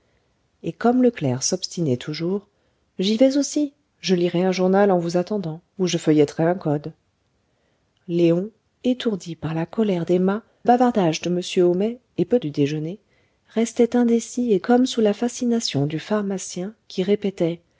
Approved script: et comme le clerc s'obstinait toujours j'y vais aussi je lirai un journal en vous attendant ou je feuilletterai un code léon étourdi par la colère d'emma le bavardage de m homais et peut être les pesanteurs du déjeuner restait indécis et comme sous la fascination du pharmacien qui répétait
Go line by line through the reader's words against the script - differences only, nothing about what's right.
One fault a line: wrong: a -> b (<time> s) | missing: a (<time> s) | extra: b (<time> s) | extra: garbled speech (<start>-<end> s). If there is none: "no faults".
missing: le (10.4 s)
missing: être les pesanteurs (12.4 s)